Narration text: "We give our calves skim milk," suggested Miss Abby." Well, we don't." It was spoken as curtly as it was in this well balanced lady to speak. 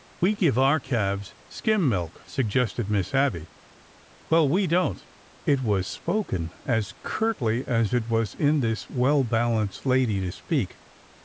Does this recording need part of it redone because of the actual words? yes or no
no